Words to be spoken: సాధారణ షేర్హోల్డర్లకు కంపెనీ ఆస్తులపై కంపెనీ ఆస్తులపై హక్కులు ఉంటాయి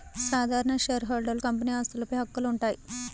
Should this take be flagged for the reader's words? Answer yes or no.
yes